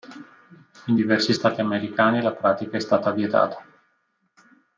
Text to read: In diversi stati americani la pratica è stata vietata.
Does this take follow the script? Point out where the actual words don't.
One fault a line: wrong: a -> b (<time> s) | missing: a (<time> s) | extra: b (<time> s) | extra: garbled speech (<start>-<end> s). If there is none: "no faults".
no faults